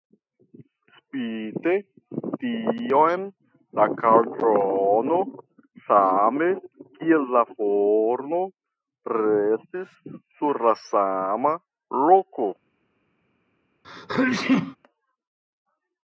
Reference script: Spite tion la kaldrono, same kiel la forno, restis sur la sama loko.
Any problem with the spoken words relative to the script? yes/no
no